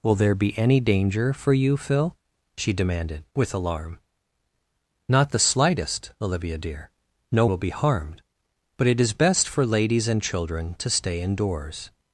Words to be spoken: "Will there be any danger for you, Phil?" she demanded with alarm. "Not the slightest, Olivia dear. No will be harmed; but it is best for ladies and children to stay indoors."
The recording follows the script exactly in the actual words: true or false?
true